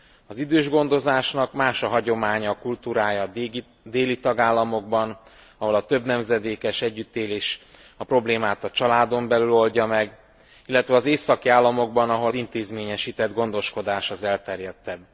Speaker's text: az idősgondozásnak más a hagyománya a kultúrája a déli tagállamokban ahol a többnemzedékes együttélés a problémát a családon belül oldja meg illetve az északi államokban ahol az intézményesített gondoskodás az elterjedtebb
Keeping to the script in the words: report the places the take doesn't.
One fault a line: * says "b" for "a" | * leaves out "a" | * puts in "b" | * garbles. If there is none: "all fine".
* leaves out "az"